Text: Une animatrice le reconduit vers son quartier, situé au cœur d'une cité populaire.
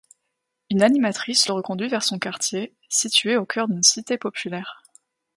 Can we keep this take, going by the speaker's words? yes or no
yes